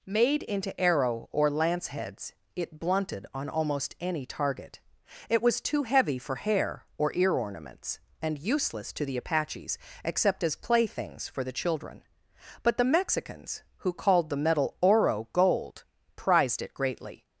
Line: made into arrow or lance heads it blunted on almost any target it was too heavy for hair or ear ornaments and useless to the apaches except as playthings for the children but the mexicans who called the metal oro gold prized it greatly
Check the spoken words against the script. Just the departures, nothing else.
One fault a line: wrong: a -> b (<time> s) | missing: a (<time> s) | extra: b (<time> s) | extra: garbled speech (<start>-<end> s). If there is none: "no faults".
no faults